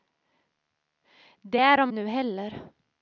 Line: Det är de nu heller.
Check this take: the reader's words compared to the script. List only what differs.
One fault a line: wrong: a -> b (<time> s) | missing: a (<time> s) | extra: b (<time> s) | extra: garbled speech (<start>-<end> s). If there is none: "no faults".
no faults